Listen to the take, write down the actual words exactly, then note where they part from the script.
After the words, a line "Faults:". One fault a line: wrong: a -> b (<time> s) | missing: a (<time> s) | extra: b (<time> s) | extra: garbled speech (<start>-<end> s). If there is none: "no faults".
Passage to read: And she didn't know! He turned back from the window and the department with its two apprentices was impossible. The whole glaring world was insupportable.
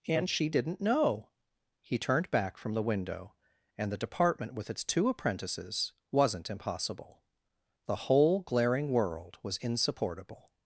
And she didn't know! He turned back from the window and the department with its two apprentices wasn't impossible. The whole glaring world was insupportable.
Faults:
wrong: was -> wasn't (6.1 s)